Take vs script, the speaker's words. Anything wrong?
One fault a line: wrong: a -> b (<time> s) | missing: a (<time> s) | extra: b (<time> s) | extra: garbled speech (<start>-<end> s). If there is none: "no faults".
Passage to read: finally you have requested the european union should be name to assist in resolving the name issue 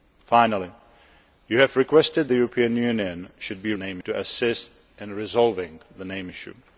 no faults